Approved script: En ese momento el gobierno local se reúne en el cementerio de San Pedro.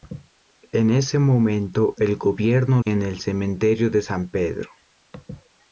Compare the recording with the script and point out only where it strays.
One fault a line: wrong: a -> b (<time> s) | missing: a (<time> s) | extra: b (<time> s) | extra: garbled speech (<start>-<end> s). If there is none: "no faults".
missing: local se reúne (2.8 s)